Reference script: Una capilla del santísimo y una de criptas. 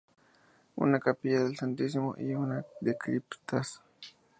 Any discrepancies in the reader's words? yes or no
no